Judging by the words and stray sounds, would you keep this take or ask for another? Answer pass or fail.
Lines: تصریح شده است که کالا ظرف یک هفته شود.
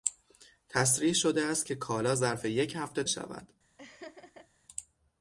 fail